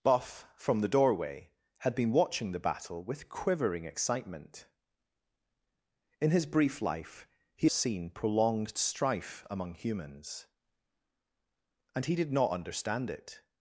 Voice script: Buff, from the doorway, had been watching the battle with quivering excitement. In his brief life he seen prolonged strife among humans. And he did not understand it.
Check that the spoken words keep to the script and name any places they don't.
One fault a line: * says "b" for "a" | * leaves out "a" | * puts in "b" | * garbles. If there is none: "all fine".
all fine